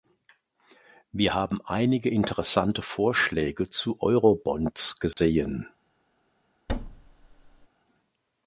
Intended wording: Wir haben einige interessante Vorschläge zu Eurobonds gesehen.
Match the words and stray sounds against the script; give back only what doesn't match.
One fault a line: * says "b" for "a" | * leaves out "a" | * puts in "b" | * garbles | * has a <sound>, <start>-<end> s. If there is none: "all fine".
* has a dropout, 5.1-5.2 s
* has a thud, 6.7-7.7 s